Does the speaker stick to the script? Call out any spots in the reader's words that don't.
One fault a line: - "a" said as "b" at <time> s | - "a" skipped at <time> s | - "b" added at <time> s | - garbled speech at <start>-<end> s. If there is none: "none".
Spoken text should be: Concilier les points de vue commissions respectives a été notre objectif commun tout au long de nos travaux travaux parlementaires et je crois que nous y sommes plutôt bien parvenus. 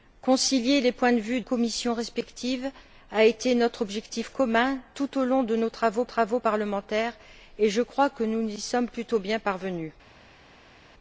none